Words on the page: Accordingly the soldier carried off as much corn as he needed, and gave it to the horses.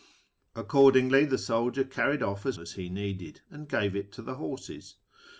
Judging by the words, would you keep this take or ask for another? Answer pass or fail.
fail